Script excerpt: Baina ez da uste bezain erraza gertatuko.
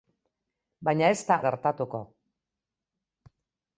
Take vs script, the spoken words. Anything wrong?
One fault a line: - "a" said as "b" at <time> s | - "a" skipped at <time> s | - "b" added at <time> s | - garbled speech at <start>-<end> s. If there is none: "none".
- "uste bezain erraza" skipped at 1.4 s